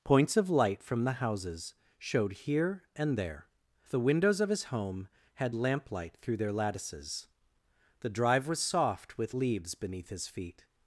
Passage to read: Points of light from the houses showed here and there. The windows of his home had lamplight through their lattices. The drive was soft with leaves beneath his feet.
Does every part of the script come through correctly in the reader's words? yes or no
yes